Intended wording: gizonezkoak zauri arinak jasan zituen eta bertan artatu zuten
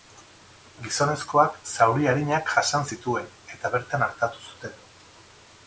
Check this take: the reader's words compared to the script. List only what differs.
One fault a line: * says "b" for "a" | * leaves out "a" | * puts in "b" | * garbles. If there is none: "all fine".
all fine